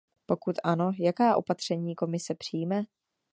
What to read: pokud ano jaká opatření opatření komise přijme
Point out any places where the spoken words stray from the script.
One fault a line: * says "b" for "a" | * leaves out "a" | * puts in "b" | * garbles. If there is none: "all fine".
* leaves out "opatření"